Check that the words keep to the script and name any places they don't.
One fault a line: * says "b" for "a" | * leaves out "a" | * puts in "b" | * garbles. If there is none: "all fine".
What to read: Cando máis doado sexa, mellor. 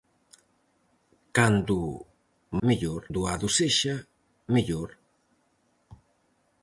* says "mellor" for "máis"